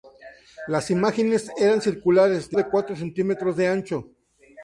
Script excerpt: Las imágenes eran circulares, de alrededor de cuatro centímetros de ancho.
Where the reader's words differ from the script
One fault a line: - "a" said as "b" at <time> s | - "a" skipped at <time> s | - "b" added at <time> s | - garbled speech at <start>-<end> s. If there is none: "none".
- "alrededor" skipped at 2.6 s